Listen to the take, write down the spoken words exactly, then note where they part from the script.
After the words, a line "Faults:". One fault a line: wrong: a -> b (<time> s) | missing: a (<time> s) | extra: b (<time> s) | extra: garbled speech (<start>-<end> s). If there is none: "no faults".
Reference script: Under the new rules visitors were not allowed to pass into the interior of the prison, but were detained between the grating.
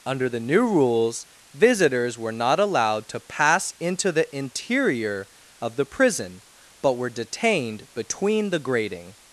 Under the new rules visitors were not allowed to pass into the interior of the prison, but were detained between the grating.
Faults:
no faults